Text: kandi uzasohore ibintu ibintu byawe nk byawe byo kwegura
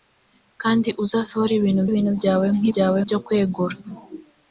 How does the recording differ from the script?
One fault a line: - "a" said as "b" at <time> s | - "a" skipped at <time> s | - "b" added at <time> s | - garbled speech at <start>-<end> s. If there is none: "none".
none